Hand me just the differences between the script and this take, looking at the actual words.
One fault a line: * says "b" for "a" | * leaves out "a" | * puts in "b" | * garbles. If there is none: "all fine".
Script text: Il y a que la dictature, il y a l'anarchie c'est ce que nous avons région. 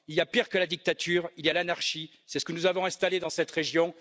* puts in "pire"
* puts in "installé dans cette"